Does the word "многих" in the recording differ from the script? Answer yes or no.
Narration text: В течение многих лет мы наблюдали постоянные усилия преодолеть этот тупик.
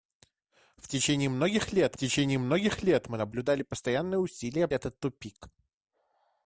no